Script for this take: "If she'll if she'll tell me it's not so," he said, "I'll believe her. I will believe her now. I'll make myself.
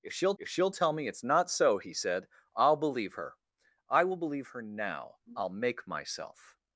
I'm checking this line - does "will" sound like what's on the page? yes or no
yes